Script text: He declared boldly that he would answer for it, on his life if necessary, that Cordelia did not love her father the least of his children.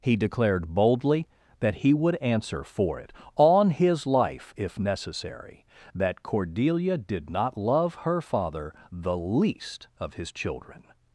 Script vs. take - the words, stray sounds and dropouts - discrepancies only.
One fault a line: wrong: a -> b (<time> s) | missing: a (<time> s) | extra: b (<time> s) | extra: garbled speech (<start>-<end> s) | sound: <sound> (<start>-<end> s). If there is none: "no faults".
no faults